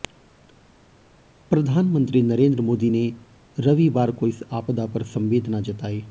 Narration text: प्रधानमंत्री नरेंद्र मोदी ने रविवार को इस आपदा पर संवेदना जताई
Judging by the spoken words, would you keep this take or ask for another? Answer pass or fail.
pass